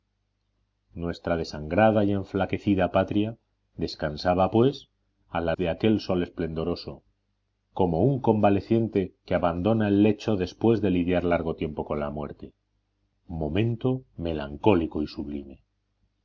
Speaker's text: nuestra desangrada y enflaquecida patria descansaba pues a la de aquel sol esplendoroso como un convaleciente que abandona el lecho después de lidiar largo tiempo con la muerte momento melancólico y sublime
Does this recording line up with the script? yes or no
yes